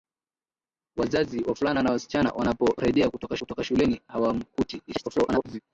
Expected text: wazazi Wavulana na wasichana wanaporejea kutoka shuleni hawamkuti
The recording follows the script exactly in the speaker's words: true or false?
false